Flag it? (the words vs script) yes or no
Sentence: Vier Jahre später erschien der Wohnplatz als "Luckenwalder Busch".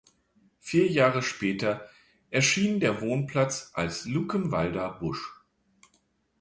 no